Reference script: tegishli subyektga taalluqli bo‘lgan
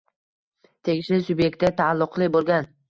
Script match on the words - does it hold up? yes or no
yes